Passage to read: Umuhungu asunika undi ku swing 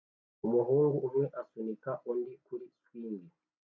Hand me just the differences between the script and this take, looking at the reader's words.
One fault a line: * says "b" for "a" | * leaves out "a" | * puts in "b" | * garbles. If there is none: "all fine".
* puts in "umwe"
* says "kuri" for "ku"